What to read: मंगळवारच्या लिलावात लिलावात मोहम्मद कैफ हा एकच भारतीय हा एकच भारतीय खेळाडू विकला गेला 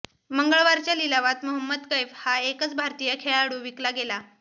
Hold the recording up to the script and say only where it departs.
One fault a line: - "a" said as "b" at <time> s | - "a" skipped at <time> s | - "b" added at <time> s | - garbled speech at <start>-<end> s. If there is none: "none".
- "लिलावात" skipped at 1.4 s
- "हा एकच भारतीय" skipped at 3.1 s